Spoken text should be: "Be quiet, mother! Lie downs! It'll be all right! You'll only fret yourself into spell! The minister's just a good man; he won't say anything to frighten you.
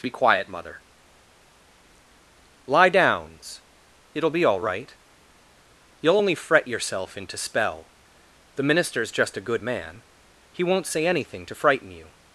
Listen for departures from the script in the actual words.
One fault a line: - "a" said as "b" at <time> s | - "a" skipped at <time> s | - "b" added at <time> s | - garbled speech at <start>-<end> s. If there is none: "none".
none